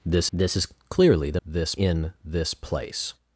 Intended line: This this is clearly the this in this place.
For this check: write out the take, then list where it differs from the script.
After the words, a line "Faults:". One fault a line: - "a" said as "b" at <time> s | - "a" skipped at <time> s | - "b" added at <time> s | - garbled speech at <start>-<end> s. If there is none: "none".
This this is clearly the this in this place.
Faults:
none